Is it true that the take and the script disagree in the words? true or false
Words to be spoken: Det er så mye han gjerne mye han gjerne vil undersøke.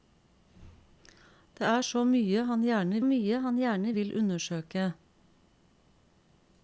false